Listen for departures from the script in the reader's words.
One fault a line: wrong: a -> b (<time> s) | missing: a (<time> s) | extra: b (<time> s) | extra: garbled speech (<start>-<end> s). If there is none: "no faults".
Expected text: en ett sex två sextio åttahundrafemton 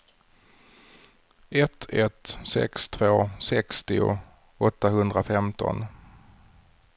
wrong: en -> ett (1.5 s)